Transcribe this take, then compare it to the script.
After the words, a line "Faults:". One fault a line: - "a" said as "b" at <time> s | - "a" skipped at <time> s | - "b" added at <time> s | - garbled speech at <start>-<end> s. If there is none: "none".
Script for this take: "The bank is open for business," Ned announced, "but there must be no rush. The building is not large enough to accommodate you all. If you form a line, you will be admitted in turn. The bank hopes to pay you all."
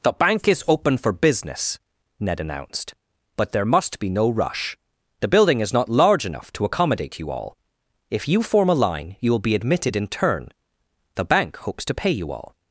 "The bank is open for business," Ned announced, "but there must be no rush. The building is not large enough to accommodate you all. If you form a line, you will be admitted in turn. The bank hopes to pay you all."
Faults:
none